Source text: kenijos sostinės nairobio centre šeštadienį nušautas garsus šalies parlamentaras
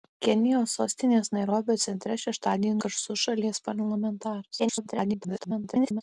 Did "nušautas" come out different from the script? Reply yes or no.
yes